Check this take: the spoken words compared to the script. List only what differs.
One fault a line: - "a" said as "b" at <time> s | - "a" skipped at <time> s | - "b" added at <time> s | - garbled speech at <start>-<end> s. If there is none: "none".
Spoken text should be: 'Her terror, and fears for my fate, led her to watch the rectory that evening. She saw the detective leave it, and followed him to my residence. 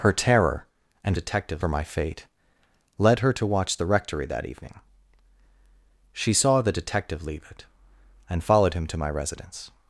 - "fears" said as "detective" at 1.1 s